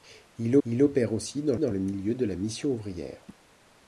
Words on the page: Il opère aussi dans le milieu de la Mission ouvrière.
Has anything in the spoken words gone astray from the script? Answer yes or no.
yes